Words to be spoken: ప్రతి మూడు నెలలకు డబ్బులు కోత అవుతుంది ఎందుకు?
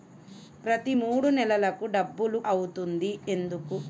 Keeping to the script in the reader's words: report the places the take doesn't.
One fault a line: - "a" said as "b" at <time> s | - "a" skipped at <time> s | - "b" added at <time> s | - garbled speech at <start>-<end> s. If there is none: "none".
- "కోత" skipped at 2.4 s